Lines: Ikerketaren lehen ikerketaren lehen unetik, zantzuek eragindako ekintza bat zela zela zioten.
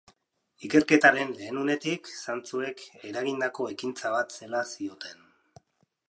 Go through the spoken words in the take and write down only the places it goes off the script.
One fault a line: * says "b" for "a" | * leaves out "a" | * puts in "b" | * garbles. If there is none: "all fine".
* leaves out "ikerketaren lehen"
* leaves out "zela"